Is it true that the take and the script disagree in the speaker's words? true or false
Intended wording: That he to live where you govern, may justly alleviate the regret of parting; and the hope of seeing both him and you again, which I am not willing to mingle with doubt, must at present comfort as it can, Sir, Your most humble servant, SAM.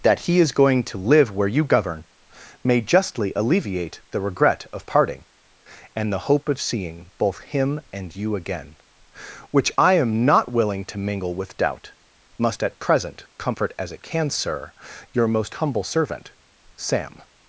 true